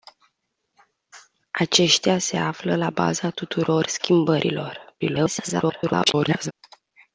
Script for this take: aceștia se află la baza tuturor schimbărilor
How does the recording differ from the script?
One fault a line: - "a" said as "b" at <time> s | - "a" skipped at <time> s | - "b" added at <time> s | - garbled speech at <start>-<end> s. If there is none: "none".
- garbled speech at 5.0-6.5 s